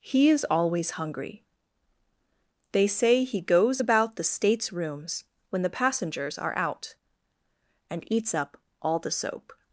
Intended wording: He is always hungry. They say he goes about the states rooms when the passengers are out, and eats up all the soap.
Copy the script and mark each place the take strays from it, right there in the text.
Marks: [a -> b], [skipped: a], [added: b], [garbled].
He is always hungry. They say he goes about the states rooms when the passengers are out, and eats up all the soap.